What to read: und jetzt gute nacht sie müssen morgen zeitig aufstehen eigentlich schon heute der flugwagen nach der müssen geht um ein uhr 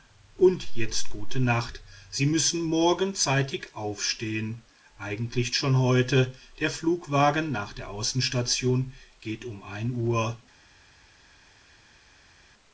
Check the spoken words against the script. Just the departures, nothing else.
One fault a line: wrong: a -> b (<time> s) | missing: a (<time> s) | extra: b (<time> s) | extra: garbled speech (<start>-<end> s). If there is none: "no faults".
wrong: müssen -> außenstation (7.9 s)